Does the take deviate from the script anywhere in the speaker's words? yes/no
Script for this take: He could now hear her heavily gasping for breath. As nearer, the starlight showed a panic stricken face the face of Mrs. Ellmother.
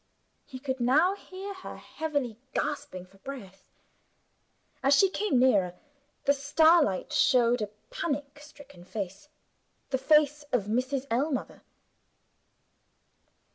yes